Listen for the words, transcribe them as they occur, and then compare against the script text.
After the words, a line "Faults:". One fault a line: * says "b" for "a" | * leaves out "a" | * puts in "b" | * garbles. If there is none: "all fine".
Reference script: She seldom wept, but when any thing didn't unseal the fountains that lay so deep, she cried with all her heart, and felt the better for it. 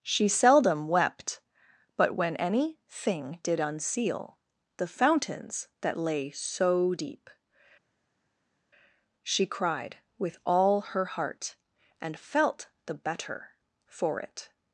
She seldom wept, but when any thing did unseal the fountains that lay so deep, she cried with all her heart, and felt the better for it.
Faults:
* says "did" for "didn't"